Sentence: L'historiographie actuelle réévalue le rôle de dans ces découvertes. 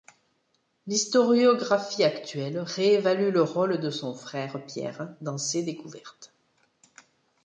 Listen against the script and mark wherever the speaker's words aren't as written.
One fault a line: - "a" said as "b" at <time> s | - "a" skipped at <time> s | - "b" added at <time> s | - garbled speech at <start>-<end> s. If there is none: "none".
- "son frère Pierre" added at 3.9 s